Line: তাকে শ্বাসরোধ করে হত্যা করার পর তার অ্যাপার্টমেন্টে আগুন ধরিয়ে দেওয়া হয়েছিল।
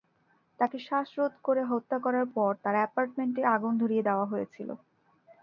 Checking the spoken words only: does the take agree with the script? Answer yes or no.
yes